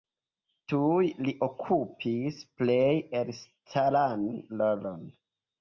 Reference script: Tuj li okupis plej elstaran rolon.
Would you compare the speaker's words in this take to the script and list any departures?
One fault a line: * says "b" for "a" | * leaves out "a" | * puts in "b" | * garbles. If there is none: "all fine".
all fine